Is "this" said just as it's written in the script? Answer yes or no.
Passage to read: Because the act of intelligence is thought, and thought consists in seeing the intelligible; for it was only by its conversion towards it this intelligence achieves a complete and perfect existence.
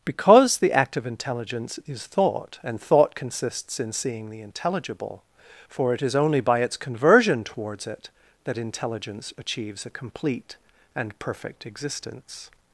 no